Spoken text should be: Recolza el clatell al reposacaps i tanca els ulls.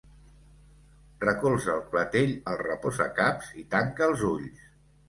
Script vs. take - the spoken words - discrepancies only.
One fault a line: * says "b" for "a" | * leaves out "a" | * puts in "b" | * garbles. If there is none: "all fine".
all fine